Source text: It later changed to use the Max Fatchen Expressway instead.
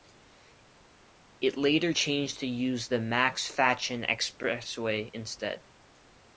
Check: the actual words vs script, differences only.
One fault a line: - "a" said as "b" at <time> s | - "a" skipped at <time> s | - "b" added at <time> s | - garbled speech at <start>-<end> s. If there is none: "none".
none